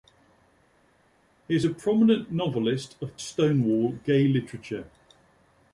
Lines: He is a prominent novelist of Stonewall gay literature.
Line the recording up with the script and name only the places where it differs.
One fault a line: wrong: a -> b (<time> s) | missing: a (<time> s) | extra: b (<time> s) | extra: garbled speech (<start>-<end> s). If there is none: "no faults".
no faults